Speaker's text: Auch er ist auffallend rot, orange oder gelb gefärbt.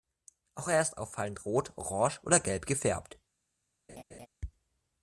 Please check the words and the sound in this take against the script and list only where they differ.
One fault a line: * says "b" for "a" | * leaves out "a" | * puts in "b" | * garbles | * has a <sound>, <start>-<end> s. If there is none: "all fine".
* has a laugh, 3.9-4.3 s